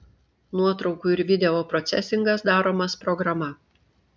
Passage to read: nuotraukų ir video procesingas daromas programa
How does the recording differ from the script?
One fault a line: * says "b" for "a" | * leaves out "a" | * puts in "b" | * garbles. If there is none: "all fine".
all fine